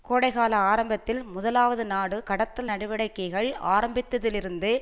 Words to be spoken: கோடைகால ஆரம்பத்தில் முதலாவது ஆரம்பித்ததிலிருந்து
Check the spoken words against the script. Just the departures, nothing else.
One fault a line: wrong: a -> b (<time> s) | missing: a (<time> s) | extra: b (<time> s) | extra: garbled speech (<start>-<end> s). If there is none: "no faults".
extra: நாடு கடத்தல் நடவடிக்கைகள் (1.9 s)